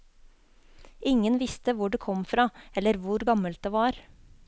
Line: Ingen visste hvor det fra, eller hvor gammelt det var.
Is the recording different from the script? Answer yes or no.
yes